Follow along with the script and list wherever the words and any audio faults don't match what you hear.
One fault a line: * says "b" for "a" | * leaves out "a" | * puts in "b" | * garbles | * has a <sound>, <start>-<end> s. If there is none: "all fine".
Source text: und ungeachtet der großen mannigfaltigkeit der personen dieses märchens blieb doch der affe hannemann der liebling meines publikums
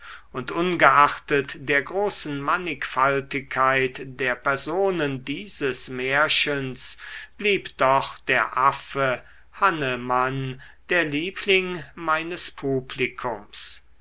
all fine